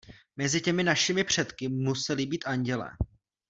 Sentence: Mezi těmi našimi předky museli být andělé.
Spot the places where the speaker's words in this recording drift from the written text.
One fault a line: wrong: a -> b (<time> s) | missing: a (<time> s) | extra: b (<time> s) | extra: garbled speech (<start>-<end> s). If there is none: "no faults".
no faults